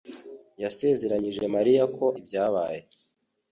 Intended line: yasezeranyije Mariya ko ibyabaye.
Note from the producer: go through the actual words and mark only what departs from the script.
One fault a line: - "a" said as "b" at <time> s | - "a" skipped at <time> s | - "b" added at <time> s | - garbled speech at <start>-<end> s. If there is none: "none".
none